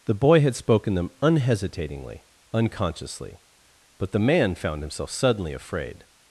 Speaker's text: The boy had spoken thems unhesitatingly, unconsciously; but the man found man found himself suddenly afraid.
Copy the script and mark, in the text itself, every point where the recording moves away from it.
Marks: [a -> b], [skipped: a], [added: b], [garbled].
The boy had spoken [thems -> them] unhesitatingly, unconsciously; but the man found [skipped: man found] himself suddenly afraid.